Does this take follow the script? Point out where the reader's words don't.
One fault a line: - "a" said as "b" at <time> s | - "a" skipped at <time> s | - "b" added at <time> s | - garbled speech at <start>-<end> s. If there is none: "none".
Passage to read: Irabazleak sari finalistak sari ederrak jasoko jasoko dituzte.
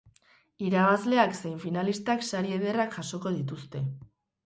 - "sari" said as "zein" at 1.4 s
- "jasoko" skipped at 3.4 s